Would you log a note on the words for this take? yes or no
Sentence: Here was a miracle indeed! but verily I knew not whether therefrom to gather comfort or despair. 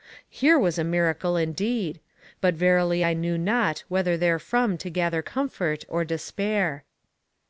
no